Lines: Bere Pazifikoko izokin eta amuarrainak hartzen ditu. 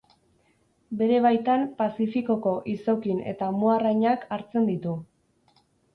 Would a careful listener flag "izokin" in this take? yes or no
no